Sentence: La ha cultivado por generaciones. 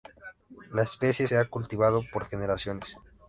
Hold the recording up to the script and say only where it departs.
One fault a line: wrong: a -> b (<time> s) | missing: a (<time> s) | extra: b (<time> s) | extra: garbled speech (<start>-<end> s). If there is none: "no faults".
extra: especie se (0.8 s)